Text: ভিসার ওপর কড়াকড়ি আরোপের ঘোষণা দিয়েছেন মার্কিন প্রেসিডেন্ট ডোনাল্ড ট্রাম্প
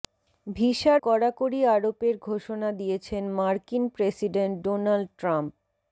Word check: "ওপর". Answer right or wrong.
wrong